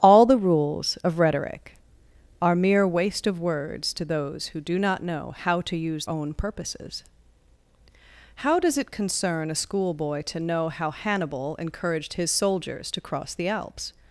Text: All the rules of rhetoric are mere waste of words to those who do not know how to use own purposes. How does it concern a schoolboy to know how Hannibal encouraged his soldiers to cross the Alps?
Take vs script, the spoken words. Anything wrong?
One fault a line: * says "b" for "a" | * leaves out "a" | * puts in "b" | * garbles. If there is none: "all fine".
all fine